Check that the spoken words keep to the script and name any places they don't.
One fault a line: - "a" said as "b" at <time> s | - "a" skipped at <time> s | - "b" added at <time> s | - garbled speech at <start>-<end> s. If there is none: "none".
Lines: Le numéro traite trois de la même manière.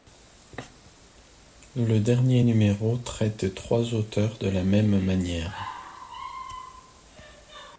- "dernier" added at 2.0 s
- "auteurs" added at 3.9 s